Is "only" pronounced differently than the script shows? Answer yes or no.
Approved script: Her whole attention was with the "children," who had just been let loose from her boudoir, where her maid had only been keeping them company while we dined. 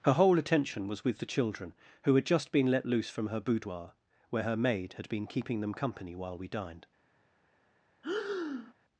yes